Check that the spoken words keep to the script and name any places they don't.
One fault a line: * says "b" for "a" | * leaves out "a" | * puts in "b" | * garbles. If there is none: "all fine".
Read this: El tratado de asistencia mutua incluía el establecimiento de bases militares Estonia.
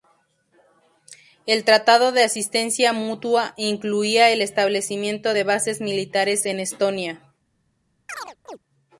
* puts in "en"